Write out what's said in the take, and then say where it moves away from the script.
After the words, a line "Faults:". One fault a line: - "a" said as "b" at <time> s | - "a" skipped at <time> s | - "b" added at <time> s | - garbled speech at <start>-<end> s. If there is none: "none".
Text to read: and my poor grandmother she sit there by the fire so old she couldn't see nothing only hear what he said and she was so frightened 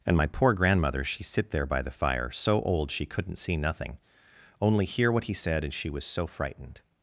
and my poor grandmother she sit there by the fire so old she couldn't see nothing only hear what he said and she was so frightened
Faults:
none